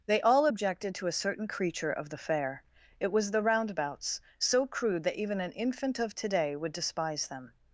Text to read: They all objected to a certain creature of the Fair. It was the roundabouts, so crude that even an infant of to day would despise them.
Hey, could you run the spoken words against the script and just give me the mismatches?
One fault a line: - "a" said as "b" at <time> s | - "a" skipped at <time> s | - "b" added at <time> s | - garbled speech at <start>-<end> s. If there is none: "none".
none